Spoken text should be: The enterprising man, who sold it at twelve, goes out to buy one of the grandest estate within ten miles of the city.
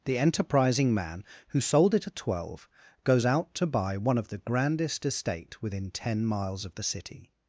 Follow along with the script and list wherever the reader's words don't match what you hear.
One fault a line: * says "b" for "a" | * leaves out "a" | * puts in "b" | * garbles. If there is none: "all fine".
all fine